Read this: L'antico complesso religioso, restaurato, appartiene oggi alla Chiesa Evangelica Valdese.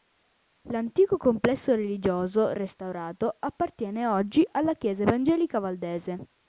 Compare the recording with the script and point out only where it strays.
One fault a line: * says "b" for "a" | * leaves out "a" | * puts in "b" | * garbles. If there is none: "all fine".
all fine